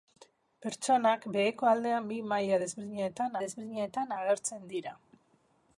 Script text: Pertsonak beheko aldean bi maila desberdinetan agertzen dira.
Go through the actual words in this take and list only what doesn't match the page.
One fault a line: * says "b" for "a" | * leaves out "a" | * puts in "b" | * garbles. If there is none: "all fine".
* puts in "desberdinetan"